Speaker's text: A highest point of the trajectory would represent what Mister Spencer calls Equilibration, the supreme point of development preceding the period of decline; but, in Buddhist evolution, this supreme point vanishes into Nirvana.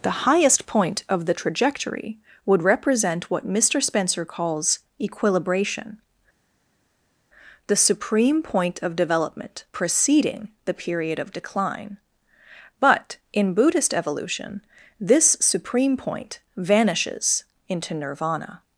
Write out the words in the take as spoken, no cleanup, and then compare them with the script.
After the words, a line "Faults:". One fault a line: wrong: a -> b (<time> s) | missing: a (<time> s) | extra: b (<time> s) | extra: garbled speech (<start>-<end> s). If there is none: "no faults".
The highest point of the trajectory would represent what Mister Spencer calls Equilibration, the supreme point of development preceding the period of decline; but, in Buddhist evolution, this supreme point vanishes into Nirvana.
Faults:
wrong: A -> The (0.0 s)